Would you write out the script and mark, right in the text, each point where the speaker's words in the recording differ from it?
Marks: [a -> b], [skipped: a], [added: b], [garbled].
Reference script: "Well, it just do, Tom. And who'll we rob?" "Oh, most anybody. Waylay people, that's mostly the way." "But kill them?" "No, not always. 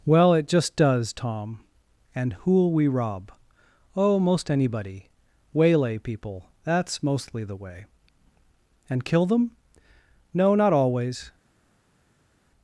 "Well, it just [do, -> does] Tom. And who'll we rob?" "Oh, most anybody. Waylay people, that's mostly the way." ["But -> And] kill them?" "No, not always.